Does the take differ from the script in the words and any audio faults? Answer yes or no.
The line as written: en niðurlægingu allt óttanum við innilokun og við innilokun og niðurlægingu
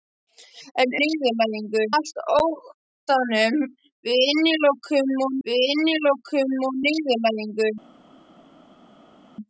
no